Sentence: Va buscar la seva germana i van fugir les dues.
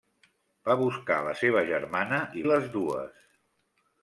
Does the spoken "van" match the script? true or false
false